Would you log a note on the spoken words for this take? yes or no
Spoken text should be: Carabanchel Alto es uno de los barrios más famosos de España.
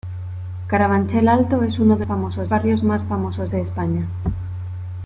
yes